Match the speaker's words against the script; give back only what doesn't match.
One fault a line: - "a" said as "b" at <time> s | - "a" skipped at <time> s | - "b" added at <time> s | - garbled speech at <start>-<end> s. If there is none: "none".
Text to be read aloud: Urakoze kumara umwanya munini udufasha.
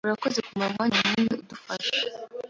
none